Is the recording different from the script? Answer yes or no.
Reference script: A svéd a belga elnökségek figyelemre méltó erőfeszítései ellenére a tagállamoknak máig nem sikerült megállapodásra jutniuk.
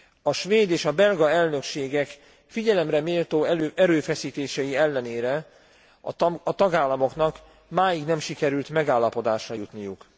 yes